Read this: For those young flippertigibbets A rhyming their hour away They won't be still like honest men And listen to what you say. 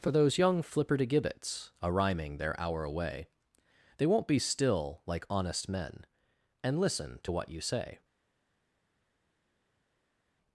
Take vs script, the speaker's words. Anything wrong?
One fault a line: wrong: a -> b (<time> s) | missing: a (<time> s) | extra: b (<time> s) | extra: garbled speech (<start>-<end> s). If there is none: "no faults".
no faults